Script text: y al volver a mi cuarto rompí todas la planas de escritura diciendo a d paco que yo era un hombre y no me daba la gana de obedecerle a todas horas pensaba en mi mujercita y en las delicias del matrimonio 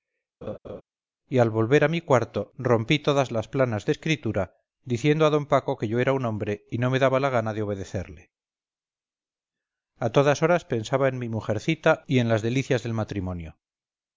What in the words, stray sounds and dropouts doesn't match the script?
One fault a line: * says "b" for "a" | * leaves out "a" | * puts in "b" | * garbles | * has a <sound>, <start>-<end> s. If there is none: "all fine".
* has a laugh, 0.4-0.8 s
* says "las" for "la"